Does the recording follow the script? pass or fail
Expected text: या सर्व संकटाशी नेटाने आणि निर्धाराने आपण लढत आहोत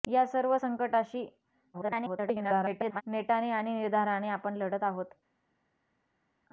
fail